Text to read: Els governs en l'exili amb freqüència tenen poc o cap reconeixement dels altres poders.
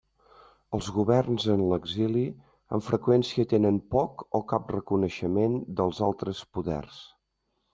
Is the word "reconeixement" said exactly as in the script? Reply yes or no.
yes